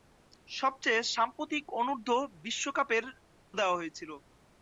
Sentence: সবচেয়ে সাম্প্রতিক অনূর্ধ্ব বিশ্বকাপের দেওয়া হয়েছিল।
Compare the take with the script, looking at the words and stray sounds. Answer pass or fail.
pass